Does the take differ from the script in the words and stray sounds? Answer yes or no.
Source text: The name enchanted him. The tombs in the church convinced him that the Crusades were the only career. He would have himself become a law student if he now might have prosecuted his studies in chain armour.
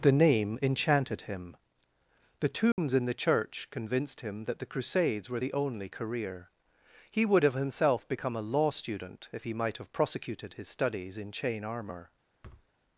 yes